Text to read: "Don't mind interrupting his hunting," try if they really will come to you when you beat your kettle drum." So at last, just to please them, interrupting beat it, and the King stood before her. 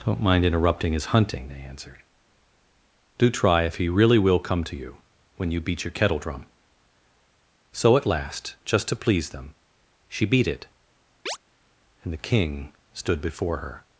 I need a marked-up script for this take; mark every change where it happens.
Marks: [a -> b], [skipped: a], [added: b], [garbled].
"Don't mind interrupting his hunting," [added: they answered Do] try if [they -> he] really will come to you when you beat your kettle drum." So at last, just to please them, [interrupting -> she] beat it, and the King stood before her.